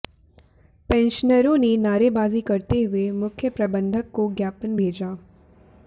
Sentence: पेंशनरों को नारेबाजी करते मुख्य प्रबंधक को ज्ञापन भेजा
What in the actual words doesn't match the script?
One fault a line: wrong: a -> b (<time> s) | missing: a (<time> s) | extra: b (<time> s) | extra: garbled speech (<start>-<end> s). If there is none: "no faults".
wrong: को -> ने (1.6 s)
extra: हुए (2.8 s)